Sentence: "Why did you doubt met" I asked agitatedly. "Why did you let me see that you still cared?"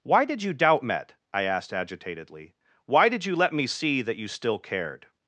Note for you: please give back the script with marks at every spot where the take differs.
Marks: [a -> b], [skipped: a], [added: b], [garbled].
"Why did you doubt met" I asked agitatedly. "Why did you let me see that you still cared?"